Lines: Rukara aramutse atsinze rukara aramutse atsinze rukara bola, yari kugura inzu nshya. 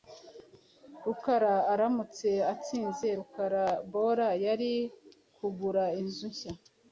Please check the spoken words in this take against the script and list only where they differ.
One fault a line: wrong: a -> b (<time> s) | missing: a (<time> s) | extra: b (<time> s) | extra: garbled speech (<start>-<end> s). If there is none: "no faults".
missing: aramutse atsinze rukara (3.6 s)